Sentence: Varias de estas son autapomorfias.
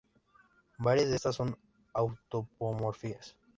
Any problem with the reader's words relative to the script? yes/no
no